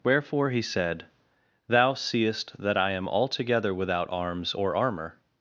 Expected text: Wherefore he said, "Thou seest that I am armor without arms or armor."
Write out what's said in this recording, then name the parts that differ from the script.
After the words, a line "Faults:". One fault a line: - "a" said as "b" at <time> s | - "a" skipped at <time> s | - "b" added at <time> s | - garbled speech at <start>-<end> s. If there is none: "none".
Wherefore he said, "Thou seest that I am altogether without arms or armor."
Faults:
- "armor" said as "altogether" at 3.1 s